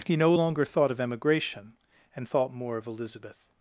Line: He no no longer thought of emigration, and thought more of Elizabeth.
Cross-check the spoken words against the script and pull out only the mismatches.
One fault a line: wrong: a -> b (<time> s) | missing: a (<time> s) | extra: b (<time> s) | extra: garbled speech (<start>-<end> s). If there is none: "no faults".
missing: no (0.3 s)